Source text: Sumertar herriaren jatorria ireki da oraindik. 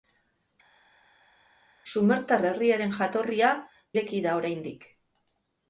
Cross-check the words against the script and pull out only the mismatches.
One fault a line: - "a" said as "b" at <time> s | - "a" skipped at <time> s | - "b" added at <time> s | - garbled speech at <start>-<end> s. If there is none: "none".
none